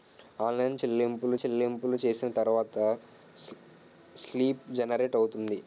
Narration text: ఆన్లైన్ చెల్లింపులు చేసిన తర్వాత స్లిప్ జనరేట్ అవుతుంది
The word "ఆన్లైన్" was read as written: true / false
true